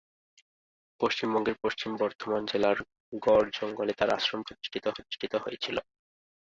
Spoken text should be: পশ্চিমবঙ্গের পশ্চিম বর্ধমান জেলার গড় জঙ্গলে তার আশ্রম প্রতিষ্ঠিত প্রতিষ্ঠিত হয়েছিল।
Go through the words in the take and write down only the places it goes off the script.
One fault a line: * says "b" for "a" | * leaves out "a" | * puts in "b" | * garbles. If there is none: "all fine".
all fine